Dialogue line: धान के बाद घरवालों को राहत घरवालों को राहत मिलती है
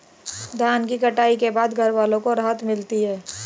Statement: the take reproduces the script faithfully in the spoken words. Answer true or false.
false